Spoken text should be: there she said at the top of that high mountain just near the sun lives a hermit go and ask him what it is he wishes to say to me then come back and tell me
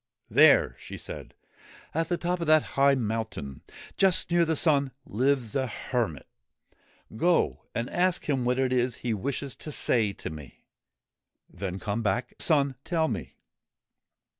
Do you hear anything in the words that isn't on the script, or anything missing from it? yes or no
yes